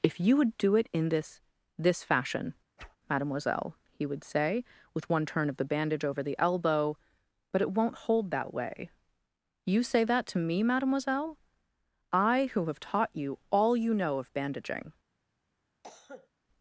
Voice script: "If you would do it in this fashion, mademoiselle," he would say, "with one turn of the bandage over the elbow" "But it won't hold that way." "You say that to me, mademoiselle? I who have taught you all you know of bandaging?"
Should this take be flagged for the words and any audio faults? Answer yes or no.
yes